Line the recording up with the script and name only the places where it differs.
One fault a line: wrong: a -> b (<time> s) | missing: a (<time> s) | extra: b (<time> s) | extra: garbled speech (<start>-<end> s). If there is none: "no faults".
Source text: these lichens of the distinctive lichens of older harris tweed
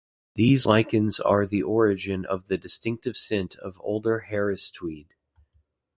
extra: are the origin (1.2 s)
wrong: lichens -> scent (3.1 s)